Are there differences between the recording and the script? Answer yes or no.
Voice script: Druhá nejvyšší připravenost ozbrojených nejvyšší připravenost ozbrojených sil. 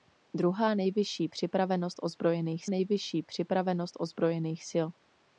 no